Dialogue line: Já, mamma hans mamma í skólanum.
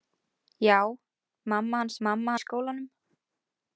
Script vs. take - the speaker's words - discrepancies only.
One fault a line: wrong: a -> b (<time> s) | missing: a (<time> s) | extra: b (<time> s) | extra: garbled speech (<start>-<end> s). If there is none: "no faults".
no faults